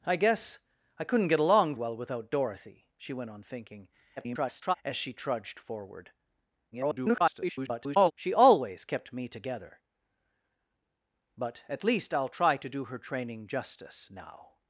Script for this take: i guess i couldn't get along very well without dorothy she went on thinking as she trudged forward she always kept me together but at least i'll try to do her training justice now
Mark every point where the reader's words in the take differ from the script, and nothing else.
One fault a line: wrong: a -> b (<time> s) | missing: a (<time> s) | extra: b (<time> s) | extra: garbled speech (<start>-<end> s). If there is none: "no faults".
missing: very (1.8 s)
extra: garbled speech (4.2-4.7 s)
extra: garbled speech (6.7-8.1 s)